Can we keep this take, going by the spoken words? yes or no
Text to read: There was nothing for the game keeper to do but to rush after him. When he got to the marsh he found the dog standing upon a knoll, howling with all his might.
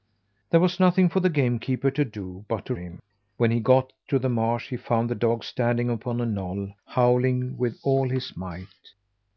no